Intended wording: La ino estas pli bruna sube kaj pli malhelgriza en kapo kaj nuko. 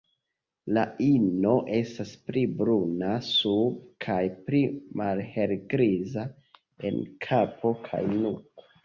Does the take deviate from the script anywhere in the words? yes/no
no